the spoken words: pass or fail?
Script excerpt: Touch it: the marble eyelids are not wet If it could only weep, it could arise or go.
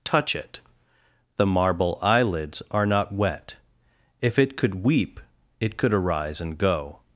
fail